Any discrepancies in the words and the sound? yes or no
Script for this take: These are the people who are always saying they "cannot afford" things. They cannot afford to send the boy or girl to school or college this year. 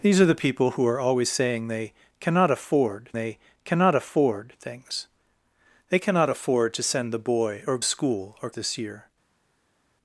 yes